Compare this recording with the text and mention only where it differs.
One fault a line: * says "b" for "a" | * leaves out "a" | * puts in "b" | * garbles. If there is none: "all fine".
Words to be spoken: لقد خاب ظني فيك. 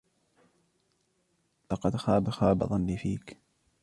* puts in "خاب"